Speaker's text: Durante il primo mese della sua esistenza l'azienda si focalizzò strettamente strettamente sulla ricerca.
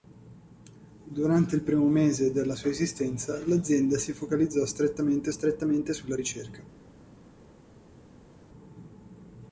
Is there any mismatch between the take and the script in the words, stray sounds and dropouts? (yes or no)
no